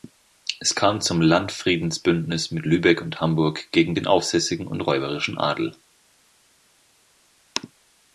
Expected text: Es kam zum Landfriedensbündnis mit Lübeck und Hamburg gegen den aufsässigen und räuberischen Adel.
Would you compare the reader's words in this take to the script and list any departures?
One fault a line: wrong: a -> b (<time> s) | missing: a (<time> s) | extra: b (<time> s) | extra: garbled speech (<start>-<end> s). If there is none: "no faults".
no faults